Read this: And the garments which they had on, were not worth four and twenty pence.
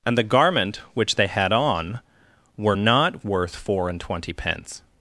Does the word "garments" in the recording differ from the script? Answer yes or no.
yes